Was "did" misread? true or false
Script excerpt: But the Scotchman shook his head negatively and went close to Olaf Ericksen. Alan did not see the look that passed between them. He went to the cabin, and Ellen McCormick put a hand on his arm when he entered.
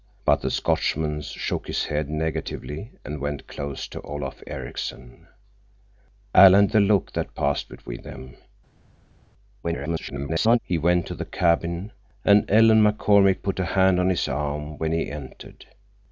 true